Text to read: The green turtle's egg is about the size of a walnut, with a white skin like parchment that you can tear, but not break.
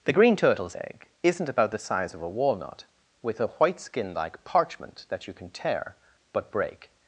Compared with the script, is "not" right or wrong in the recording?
wrong